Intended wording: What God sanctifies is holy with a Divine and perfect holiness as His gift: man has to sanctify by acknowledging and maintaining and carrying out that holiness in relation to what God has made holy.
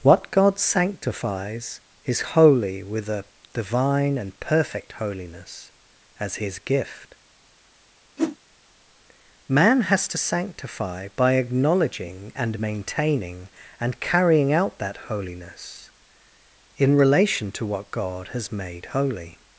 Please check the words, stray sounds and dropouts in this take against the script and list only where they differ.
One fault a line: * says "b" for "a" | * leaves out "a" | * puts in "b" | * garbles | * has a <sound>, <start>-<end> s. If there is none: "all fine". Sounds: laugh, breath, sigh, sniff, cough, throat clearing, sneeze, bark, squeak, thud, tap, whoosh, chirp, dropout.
* has a whoosh, 8.2-8.4 s